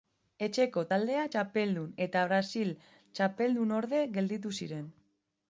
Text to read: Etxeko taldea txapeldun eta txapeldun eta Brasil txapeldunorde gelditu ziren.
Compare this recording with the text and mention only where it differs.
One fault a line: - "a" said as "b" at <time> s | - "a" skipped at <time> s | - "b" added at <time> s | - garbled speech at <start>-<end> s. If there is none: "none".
- "txapeldun eta" skipped at 2.3 s